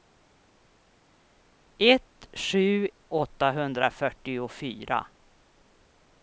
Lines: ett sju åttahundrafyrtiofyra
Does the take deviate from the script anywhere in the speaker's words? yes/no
no